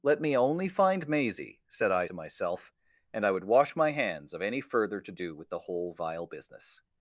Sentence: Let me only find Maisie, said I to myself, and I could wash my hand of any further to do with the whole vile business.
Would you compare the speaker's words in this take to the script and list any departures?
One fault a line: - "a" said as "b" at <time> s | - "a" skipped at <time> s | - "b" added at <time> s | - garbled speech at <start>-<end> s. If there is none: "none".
- "could" said as "would" at 3.3 s
- "hand" said as "hands" at 3.9 s